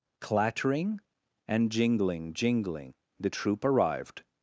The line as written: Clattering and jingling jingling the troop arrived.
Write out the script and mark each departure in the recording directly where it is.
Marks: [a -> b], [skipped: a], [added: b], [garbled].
Clattering and jingling jingling the troop arrived.